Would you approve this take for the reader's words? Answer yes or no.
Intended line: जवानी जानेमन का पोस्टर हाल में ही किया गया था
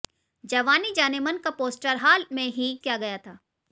yes